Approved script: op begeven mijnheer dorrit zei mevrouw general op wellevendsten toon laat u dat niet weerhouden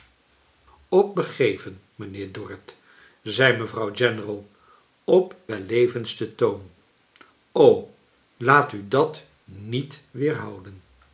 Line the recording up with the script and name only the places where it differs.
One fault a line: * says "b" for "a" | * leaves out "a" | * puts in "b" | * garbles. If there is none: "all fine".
all fine